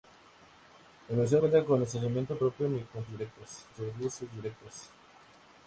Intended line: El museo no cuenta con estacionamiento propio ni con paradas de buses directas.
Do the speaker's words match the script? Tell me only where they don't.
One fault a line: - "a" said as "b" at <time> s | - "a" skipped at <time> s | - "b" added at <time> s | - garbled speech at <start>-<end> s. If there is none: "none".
- "no" skipped at 1.4 s
- "paradas" said as "directas" at 3.1 s